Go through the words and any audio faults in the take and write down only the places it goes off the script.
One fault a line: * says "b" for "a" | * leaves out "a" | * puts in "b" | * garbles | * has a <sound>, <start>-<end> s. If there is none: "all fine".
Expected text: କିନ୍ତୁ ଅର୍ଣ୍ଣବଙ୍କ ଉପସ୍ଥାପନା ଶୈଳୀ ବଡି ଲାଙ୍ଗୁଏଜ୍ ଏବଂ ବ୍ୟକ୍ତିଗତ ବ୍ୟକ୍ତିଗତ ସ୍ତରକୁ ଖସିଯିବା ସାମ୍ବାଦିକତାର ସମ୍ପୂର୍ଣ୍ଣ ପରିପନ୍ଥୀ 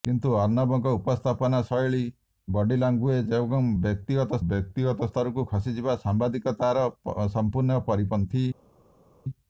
all fine